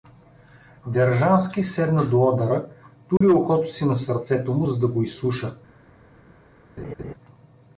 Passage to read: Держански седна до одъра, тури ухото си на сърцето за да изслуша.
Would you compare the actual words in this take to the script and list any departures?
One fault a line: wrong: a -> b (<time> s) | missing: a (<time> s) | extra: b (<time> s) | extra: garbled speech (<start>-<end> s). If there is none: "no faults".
extra: му (4.5 s)
extra: го (4.9 s)